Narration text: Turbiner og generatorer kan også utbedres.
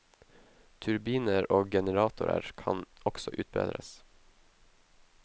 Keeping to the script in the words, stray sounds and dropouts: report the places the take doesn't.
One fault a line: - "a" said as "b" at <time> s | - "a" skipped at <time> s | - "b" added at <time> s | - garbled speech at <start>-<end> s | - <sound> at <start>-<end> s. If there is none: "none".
none